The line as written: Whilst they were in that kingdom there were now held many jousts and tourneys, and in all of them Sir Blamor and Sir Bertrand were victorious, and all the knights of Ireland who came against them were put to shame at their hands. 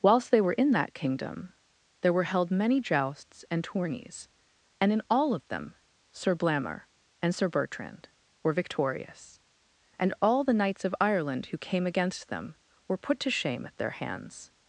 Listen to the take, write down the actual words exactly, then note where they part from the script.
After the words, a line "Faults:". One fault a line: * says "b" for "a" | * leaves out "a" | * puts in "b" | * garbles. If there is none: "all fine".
Whilst they were in that kingdom there were held many jousts and tourneys, and in all of them Sir Blamor and Sir Bertrand were victorious, and all the knights of Ireland who came against them were put to shame at their hands.
Faults:
* leaves out "now"